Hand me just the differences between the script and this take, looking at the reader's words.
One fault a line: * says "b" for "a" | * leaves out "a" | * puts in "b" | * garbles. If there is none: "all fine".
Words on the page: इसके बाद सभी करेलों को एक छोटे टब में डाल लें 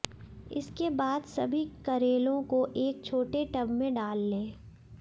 all fine